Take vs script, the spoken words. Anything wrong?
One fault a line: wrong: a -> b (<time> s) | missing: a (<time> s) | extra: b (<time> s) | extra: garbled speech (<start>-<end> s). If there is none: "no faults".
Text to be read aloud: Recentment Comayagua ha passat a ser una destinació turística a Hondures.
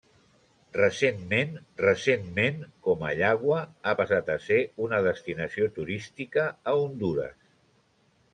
extra: recentment (1.8 s)